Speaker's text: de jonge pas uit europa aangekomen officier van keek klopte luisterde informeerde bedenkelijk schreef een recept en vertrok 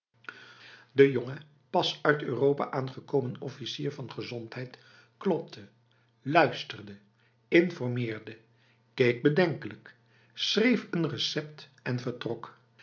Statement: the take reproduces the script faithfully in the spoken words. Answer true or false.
false